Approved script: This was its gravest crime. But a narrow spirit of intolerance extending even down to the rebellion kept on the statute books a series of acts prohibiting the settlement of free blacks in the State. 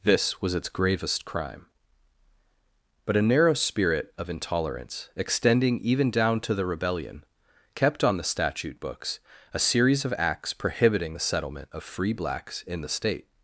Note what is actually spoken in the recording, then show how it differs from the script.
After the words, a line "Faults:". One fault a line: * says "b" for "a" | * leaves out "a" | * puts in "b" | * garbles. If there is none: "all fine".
This was its gravest crime. But a narrow spirit of intolerance extending even down to the rebellion kept on the statute books a series of acts prohibiting the settlement of free blacks in the State.
Faults:
all fine